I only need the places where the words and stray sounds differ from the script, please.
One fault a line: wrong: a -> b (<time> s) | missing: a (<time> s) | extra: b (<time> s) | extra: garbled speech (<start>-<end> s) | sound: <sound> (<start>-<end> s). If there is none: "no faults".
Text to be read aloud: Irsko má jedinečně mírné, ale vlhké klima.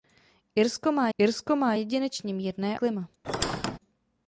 extra: irsko má (1.2 s)
missing: ale vlhké (2.8 s)
sound: squeak (3.2-3.8 s)